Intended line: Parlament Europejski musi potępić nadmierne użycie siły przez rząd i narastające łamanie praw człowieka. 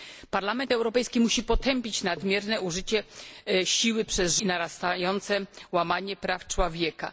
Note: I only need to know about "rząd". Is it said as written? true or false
false